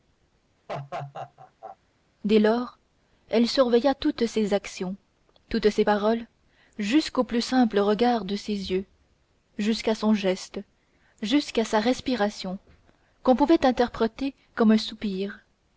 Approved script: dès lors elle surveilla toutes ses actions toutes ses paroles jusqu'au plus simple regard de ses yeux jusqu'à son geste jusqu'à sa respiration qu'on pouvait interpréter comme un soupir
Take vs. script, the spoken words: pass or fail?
pass